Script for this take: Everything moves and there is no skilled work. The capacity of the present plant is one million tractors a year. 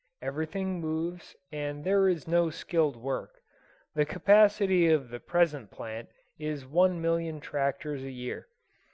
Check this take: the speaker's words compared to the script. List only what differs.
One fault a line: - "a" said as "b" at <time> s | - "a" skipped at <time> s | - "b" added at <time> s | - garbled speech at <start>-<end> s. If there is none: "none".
none